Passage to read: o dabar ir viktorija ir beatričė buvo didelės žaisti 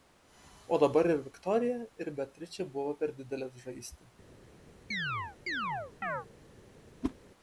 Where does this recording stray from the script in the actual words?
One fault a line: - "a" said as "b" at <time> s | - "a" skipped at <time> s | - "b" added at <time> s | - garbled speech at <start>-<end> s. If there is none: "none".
- "per" added at 3.0 s